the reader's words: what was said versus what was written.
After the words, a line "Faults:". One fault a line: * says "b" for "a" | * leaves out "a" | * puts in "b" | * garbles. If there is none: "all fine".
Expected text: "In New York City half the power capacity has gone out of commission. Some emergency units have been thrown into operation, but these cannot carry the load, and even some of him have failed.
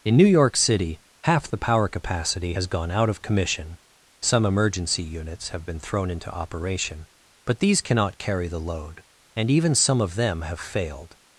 "In New York City half the power capacity has gone out of commission. Some emergency units have been thrown into operation, but these cannot carry the load, and even some of them have failed.
Faults:
* says "them" for "him"